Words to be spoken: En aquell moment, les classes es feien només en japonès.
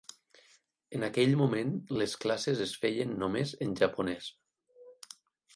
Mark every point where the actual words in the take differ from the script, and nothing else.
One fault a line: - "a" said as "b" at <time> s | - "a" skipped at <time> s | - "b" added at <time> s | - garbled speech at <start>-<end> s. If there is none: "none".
none